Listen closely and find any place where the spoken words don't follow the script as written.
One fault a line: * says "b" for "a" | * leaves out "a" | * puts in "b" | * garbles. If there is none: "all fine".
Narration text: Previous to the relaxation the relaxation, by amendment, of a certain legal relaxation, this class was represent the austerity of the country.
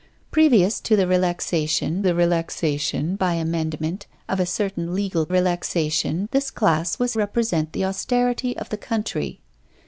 all fine